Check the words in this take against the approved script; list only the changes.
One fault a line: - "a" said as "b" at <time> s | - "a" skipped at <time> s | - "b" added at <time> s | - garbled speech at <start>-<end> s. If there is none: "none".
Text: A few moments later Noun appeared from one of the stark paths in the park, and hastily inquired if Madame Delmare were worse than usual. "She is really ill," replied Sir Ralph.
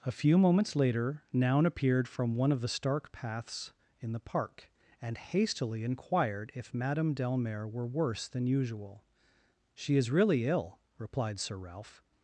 none